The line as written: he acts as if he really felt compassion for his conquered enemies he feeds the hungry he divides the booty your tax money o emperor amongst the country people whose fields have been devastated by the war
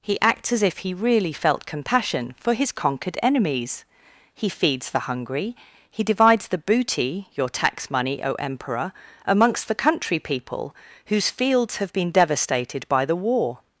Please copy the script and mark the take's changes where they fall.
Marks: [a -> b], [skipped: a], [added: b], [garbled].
he acts as if he really felt compassion for his conquered enemies he feeds the hungry he divides the booty your tax money o emperor amongst the country people whose fields have been devastated by the war